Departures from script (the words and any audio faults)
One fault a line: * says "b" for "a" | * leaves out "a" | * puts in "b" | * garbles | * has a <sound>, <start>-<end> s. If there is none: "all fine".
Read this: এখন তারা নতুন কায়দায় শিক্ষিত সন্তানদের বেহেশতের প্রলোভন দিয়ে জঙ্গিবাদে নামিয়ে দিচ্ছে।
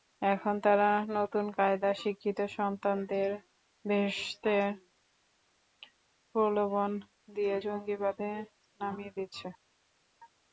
all fine